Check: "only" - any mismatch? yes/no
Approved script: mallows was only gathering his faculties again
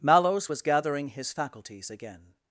yes